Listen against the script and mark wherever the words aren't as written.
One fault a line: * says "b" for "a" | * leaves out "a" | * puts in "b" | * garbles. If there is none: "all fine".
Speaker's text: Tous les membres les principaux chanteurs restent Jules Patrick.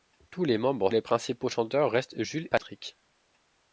all fine